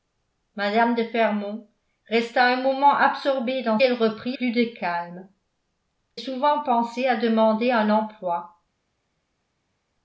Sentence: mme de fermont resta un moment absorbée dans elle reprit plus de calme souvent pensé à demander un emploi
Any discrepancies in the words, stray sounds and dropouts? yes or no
no